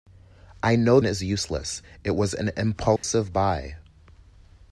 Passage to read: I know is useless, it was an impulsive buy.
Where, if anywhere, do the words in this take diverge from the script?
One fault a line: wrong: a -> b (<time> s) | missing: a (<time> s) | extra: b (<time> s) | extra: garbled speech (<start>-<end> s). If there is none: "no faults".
no faults